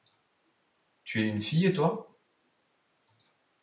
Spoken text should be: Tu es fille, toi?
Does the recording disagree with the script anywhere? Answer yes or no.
yes